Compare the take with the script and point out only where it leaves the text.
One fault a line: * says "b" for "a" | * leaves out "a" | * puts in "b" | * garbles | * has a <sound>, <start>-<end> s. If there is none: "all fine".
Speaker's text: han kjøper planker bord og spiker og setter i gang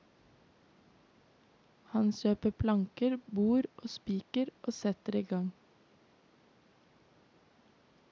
all fine